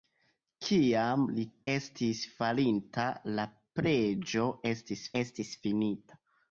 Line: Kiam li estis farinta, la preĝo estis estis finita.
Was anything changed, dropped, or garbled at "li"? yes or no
no